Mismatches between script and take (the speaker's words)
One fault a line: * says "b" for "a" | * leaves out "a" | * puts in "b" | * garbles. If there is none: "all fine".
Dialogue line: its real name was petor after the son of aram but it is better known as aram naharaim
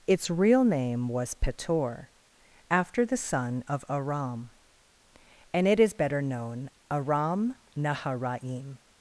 * says "and" for "but"
* leaves out "as"